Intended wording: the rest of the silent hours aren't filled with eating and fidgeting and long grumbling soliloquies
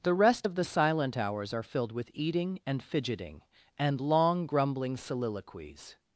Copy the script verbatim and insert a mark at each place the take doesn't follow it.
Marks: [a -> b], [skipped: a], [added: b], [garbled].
the rest of the silent hours [aren't -> are] filled with eating and fidgeting and long grumbling soliloquies